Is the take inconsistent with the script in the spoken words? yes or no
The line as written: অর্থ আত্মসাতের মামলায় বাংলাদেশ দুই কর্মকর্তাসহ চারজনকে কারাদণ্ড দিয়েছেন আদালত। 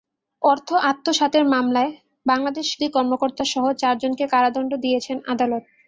no